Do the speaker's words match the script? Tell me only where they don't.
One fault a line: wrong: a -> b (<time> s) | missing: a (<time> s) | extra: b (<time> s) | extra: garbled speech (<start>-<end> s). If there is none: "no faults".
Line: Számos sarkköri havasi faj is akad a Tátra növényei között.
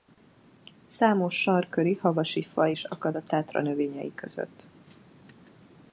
no faults